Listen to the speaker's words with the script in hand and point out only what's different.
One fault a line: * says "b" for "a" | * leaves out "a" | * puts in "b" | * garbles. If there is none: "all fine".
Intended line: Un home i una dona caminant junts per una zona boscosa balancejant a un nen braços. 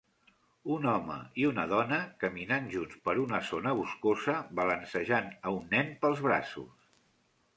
* puts in "pels"